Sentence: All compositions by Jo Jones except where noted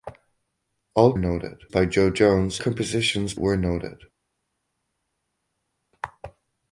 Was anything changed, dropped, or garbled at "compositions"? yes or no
yes